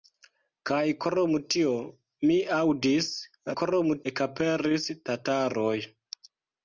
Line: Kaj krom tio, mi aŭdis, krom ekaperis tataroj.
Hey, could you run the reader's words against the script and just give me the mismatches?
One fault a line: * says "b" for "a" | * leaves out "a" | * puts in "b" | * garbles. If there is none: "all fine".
all fine